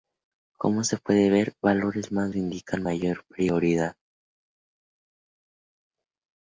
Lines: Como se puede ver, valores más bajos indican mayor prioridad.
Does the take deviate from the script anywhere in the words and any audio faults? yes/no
yes